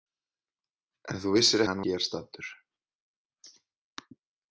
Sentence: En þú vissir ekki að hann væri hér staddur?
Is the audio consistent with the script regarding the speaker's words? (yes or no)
no